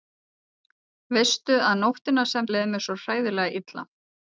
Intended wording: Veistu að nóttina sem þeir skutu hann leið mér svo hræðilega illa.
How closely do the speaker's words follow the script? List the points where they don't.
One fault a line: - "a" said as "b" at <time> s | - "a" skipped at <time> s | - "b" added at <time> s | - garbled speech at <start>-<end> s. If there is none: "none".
- "þeir skutu hann" skipped at 2.5 s